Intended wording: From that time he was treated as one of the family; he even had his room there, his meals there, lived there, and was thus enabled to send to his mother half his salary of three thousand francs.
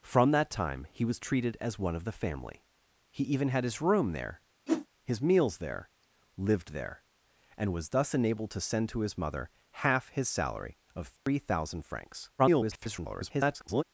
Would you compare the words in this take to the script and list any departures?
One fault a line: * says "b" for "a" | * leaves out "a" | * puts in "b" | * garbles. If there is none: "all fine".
* garbles